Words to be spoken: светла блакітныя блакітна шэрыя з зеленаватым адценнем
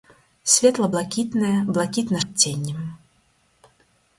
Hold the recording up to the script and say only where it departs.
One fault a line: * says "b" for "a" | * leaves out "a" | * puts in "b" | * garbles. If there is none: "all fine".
* leaves out "шэрыя з зеленаватым"